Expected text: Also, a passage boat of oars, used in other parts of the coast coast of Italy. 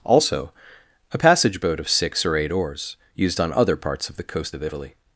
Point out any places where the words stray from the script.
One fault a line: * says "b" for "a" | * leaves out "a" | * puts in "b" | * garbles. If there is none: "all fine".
* puts in "six or eight"
* says "on" for "in"
* leaves out "coast"